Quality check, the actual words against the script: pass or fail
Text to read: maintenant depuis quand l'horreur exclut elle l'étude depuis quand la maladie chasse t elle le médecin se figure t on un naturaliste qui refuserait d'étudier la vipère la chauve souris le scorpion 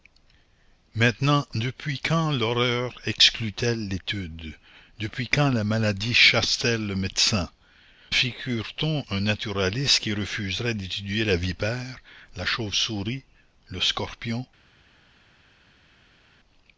fail